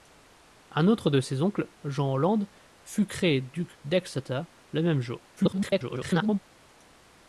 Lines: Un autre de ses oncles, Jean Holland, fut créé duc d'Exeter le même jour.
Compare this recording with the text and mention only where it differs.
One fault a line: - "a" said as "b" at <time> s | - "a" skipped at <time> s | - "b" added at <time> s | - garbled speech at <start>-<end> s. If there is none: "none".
- garbled speech at 5.4-6.4 s